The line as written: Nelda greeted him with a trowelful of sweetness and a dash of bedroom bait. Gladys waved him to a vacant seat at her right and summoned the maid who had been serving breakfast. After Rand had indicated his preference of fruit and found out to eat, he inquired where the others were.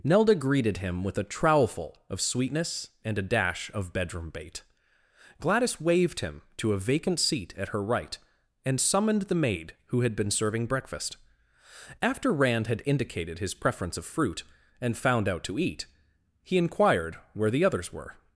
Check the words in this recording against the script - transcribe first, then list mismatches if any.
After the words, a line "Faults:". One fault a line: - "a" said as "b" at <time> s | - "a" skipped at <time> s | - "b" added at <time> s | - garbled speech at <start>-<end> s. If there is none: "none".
Nelda greeted him with a trowelful of sweetness and a dash of bedroom bait. Gladys waved him to a vacant seat at her right and summoned the maid who had been serving breakfast. After Rand had indicated his preference of fruit and found out to eat, he inquired where the others were.
Faults:
none